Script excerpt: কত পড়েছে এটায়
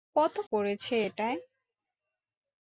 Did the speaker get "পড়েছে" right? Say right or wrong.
right